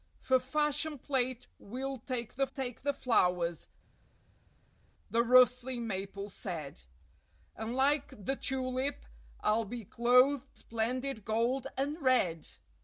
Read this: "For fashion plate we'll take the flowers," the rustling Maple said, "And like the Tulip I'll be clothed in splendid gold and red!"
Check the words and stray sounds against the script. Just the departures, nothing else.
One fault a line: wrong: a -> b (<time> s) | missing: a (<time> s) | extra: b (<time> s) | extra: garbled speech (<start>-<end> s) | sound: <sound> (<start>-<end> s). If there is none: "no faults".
extra: take the (2.5 s)
missing: in (10.6 s)